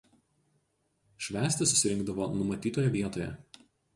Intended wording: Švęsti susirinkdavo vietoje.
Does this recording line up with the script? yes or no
no